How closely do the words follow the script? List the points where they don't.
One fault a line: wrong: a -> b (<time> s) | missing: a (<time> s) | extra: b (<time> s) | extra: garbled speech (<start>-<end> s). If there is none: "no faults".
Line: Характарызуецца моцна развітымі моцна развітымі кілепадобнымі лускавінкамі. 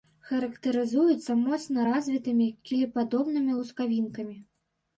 missing: моцна развітымі (2.5 s)